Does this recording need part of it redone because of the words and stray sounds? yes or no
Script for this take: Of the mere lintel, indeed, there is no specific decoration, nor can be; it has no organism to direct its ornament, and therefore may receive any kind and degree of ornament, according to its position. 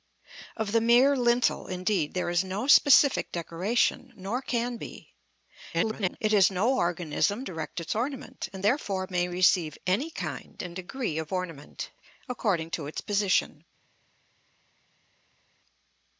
yes